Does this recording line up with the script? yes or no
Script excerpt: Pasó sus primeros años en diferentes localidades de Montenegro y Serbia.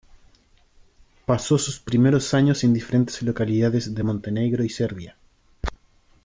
yes